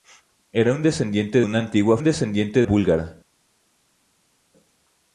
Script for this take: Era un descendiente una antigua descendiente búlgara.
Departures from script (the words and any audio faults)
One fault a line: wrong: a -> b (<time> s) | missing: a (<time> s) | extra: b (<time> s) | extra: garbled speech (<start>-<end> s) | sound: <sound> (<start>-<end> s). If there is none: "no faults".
no faults